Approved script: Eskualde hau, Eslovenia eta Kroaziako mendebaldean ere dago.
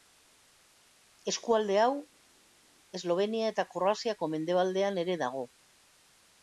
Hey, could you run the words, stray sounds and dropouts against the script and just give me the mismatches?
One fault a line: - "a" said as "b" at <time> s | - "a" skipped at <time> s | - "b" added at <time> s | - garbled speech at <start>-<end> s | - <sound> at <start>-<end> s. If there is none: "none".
none